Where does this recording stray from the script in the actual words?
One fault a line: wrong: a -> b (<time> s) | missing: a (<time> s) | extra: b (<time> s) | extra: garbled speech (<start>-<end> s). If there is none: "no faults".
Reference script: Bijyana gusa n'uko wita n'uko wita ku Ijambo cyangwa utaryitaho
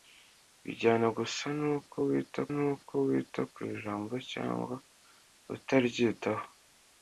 no faults